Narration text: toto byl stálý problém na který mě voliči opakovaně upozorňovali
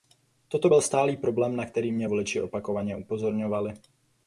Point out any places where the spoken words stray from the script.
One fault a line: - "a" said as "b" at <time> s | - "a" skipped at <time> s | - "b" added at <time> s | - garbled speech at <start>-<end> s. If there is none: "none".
none